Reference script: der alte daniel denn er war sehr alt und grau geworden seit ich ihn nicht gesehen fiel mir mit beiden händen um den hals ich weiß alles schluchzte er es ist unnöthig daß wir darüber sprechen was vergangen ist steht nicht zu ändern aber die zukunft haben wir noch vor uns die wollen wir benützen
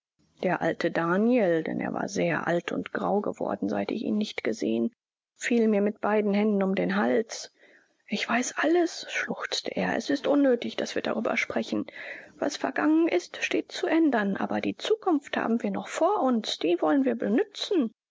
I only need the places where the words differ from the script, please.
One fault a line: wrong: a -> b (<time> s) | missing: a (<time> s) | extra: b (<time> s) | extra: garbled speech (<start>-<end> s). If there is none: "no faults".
missing: nicht (13.7 s)